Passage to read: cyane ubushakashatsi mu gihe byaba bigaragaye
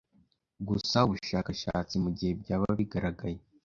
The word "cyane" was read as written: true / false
false